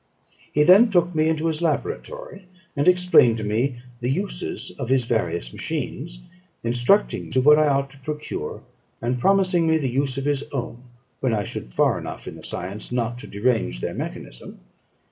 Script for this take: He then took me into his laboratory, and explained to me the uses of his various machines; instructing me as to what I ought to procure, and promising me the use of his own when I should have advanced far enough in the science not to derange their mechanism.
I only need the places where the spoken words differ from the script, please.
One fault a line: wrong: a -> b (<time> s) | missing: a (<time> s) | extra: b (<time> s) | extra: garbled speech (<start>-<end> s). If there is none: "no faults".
missing: me as (7.3 s)
missing: have advanced (11.7 s)